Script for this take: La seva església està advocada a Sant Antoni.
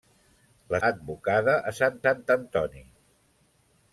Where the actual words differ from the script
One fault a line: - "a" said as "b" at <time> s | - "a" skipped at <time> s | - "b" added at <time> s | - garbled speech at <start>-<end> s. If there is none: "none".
- "seva església està" skipped at 0.8 s
- "Sant" added at 2.0 s